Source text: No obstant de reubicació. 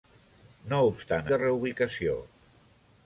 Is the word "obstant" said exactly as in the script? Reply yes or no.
yes